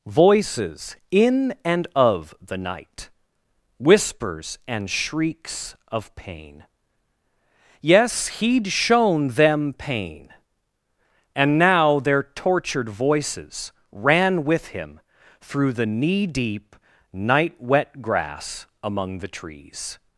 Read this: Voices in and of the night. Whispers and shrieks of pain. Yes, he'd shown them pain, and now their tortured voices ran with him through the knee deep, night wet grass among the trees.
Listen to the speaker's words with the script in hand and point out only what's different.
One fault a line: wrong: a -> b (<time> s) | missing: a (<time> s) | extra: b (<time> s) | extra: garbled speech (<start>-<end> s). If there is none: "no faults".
no faults